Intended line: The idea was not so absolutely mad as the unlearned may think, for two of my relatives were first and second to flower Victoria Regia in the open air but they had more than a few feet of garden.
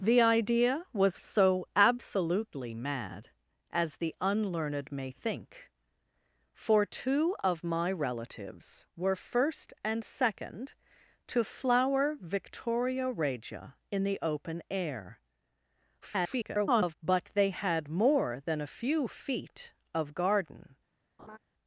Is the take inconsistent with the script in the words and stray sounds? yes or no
yes